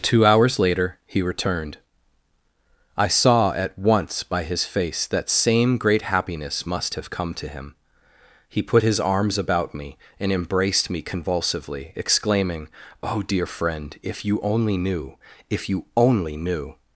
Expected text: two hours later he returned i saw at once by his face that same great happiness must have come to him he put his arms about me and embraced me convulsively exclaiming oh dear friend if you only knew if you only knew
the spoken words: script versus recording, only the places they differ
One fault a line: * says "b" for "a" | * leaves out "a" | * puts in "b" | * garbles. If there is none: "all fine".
all fine